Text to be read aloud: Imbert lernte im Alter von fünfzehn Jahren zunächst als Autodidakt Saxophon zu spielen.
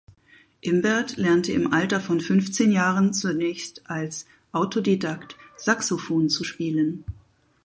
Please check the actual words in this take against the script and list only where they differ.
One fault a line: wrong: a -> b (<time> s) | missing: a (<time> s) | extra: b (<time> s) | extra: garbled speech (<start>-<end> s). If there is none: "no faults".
no faults